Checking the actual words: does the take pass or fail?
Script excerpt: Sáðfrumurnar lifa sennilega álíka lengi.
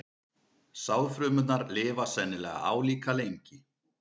pass